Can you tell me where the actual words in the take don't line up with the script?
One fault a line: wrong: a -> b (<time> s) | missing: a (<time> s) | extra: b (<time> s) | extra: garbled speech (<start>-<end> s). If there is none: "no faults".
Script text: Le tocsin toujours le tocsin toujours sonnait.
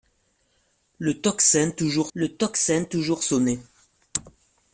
no faults